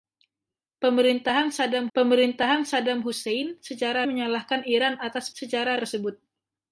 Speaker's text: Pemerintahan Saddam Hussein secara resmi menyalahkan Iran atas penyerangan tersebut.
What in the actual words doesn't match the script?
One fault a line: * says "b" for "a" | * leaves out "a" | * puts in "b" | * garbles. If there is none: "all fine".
* puts in "pemerintahan Saddam"
* leaves out "resmi"
* says "secara" for "penyerangan"